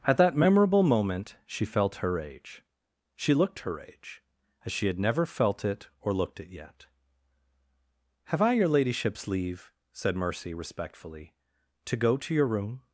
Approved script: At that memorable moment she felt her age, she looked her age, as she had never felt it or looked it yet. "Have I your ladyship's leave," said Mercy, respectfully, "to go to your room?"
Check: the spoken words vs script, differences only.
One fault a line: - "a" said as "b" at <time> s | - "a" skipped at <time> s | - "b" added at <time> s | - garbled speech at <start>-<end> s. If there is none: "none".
none